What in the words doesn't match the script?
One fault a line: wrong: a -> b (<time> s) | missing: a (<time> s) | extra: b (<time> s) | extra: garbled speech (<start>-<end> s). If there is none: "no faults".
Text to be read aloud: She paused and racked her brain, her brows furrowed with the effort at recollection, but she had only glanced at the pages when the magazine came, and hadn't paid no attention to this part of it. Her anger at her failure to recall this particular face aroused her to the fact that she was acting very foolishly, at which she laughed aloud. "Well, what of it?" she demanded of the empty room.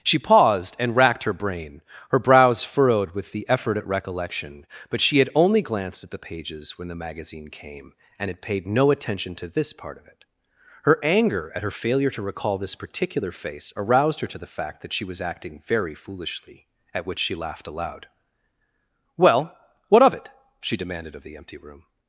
wrong: hadn't -> had (8.3 s)